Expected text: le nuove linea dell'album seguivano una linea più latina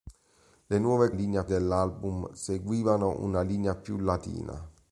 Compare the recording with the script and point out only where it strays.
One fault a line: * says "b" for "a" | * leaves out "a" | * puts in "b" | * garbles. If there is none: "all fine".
all fine